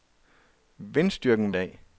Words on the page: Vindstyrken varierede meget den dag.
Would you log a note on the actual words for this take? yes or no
yes